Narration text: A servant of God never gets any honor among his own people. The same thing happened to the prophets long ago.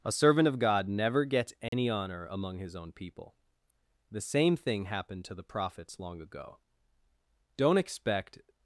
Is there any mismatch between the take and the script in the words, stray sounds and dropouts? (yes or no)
yes